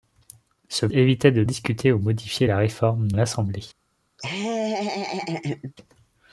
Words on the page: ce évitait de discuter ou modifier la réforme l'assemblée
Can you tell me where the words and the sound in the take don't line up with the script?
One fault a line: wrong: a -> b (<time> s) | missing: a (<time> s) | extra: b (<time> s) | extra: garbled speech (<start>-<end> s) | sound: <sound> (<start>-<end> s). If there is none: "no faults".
sound: laugh (4.2-5.7 s)